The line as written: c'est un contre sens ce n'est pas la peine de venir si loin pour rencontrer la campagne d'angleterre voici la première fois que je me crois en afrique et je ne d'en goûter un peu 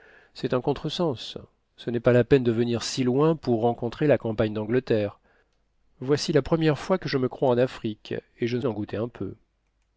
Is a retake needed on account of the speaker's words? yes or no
no